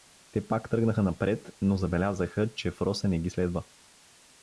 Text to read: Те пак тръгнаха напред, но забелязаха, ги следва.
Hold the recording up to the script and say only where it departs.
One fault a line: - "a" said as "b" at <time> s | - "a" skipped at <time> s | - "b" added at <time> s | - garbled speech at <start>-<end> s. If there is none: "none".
- "че Фроса не" added at 2.5 s